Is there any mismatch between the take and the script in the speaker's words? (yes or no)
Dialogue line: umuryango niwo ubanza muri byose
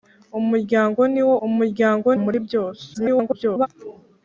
yes